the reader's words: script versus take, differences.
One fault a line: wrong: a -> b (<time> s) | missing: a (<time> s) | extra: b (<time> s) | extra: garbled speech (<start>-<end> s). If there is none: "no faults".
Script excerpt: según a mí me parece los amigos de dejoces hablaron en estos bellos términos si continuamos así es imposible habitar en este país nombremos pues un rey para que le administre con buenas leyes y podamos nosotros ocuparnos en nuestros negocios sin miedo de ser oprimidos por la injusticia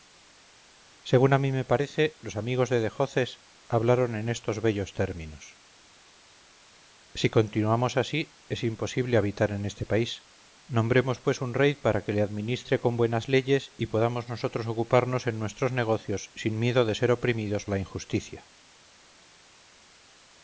missing: por (17.7 s)